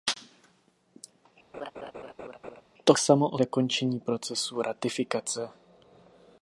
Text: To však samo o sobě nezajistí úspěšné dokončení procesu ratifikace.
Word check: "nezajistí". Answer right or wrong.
wrong